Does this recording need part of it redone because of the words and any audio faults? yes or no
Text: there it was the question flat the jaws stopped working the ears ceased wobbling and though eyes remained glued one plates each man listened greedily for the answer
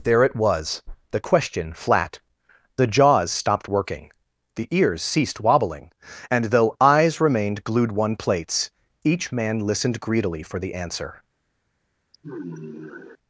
yes